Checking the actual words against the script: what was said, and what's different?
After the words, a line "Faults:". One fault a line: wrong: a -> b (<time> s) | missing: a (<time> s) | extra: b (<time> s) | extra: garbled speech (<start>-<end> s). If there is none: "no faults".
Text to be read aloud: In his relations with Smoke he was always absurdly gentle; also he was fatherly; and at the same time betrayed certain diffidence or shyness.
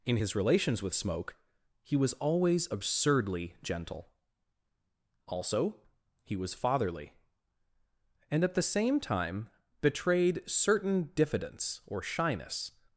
In his relations with Smoke he was always absurdly gentle; also he was fatherly; and at the same time betrayed certain diffidence or shyness.
Faults:
no faults